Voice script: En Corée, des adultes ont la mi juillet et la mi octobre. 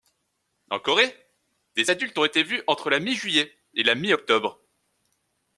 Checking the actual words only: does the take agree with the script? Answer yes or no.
no